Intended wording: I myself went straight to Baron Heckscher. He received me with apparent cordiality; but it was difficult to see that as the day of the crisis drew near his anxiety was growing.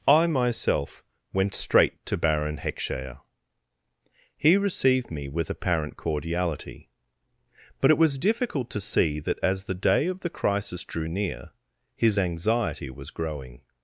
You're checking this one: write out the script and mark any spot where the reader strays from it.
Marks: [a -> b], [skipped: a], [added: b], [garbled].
I myself went straight to Baron Heckscher. He received me with apparent cordiality; but it was difficult to see that as the day of the crisis drew near his anxiety was growing.